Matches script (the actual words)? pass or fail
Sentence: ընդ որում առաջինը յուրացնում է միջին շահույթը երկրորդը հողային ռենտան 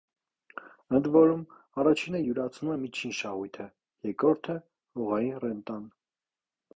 pass